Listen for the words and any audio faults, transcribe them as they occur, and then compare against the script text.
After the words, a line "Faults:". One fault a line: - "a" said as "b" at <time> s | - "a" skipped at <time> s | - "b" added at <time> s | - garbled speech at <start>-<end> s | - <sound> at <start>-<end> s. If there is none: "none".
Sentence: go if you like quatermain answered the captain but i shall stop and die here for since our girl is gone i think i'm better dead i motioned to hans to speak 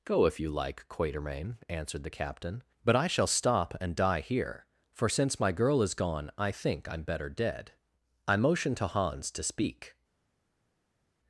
go if you like quatermain answered the captain but i shall stop and die here for since my girl is gone i think i'm better dead i motioned to hans to speak
Faults:
- "our" said as "my" at 5.4 s